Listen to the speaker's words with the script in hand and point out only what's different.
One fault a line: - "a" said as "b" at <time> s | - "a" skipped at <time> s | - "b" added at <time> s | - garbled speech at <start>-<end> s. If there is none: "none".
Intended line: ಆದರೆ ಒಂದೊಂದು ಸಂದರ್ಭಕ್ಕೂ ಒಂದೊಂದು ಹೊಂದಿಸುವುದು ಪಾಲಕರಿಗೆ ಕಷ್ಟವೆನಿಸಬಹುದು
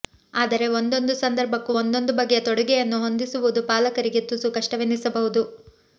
- "ಬಗೆಯ ತೊಡುಗೆಯನ್ನು" added at 2.2 s
- "ತುಸು" added at 4.3 s